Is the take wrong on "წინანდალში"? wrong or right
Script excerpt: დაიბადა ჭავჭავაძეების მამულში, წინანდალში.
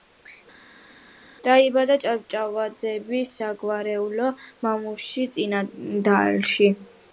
right